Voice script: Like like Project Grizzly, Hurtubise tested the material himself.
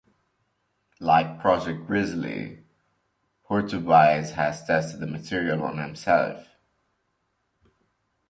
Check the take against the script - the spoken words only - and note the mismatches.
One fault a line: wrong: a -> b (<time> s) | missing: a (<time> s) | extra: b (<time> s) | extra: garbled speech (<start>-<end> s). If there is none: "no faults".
missing: like (1.4 s)
extra: has (4.3 s)
extra: on (5.6 s)